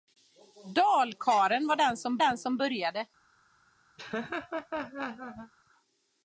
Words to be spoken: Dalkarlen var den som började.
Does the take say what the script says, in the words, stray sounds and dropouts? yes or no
no